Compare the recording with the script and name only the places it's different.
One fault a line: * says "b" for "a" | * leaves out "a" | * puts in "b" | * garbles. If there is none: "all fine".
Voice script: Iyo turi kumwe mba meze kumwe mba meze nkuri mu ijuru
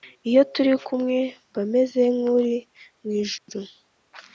* leaves out "kumwe mba meze"